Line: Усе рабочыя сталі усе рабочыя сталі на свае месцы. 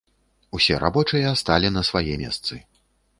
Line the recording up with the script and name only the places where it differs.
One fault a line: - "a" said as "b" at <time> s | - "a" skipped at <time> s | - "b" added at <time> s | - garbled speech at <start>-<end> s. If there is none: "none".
- "усе рабочыя сталі" skipped at 1.7 s